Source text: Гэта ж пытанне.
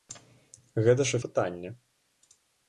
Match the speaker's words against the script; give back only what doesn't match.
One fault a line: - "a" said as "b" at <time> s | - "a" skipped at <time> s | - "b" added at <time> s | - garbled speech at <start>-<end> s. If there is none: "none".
none